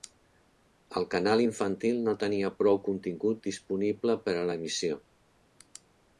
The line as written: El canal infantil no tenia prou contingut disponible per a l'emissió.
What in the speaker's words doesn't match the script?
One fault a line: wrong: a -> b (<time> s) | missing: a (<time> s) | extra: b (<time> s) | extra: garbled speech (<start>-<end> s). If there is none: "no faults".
no faults